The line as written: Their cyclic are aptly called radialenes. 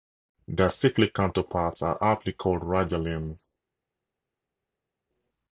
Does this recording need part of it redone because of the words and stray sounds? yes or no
yes